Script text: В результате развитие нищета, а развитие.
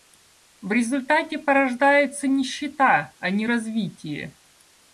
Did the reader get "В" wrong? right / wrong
right